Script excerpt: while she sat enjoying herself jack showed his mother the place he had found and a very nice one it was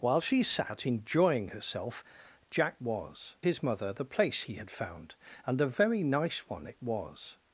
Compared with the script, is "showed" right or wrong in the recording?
wrong